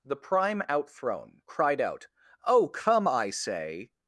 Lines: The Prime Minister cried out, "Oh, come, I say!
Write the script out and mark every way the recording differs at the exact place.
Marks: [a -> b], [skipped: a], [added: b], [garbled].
The Prime [Minister -> Outthrown] cried out, "Oh, come, I say!